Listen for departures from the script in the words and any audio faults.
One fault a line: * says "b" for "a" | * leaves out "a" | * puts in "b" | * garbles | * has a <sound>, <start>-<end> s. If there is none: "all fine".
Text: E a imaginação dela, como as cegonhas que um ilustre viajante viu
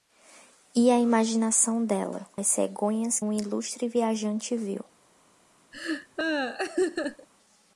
* leaves out "como"
* leaves out "que"
* has a laugh, 5.7-7.3 s